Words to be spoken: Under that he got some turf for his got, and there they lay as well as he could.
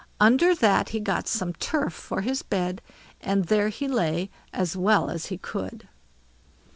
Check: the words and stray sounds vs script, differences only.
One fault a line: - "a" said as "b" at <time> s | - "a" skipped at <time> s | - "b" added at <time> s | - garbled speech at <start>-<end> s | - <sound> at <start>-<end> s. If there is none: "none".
- "got" said as "bed" at 2.4 s
- "they" said as "he" at 3.7 s